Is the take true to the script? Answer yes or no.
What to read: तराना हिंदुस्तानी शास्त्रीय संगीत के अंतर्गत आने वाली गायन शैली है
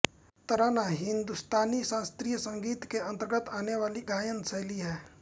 yes